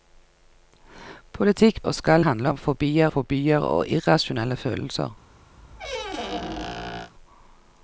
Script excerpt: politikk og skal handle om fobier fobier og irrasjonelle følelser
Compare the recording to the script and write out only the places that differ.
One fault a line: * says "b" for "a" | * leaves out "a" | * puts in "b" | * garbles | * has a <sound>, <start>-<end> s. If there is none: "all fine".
* has a squeak, 5.6-7.1 s